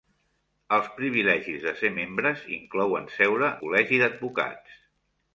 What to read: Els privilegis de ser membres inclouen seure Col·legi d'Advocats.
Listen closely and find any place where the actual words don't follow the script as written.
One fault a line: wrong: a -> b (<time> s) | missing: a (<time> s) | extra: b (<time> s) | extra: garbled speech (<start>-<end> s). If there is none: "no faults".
no faults